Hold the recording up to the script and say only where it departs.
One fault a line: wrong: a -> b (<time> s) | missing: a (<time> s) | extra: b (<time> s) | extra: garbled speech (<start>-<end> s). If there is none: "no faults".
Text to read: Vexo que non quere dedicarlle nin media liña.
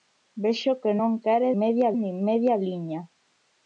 wrong: dedicarlle -> media (1.6 s)